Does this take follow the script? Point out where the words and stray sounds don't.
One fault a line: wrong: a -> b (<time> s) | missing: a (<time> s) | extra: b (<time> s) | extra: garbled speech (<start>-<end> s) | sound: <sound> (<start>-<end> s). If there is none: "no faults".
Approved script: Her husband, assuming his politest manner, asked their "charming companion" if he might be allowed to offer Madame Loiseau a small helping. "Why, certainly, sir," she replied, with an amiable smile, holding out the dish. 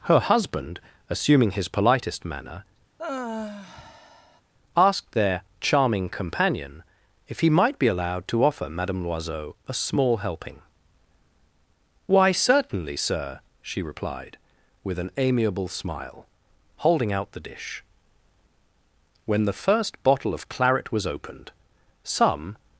sound: sigh (3.0-4.4 s)
extra: When the first bottle of claret was opened some (19.3 s)